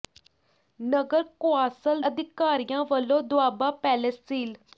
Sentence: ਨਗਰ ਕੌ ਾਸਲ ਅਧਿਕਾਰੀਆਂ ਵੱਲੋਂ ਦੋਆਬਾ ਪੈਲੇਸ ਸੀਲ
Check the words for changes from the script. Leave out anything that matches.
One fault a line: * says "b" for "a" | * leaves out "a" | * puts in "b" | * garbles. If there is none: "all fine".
all fine